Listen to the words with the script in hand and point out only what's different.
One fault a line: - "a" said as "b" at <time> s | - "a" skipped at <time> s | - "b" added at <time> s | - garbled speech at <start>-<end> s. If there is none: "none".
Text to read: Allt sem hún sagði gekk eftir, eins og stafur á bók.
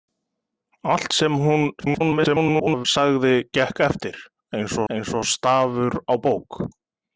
- garbled speech at 1.8-2.9 s
- "eins" added at 4.9 s